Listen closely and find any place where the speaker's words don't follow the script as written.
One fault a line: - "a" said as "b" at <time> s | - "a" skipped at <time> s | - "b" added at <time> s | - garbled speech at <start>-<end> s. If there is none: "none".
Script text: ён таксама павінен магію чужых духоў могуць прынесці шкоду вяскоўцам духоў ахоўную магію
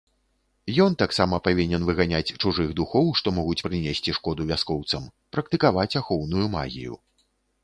- "магію" said as "выганяць" at 1.9 s
- "што" added at 3.2 s
- "духоў" said as "практыкаваць" at 5.4 s